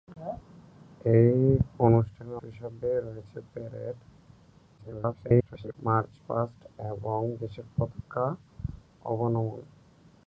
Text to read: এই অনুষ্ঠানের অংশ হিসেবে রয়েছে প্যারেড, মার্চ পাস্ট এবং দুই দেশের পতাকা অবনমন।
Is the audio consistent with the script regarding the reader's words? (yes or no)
no